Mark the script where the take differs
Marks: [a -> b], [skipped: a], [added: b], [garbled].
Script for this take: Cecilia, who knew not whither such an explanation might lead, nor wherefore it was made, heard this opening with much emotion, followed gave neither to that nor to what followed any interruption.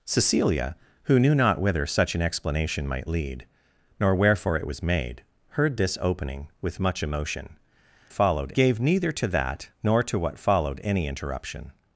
Cecilia, who knew not whither such an explanation might lead, nor wherefore it was made, heard this opening with much emotion, followed gave neither to that nor to what followed any interruption.